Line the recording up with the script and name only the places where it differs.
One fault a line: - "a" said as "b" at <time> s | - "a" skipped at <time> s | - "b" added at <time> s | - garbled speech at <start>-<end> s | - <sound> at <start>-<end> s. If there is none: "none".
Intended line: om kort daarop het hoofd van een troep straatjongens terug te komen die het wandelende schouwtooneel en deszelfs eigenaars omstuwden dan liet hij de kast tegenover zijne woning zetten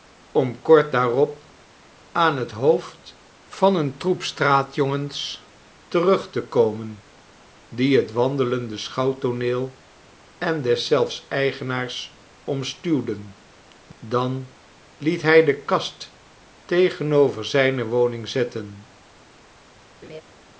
- "aan" added at 2.1 s
- laugh at 20.0-20.2 s